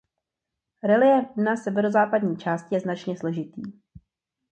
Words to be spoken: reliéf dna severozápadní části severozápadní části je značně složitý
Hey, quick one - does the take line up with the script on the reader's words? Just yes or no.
no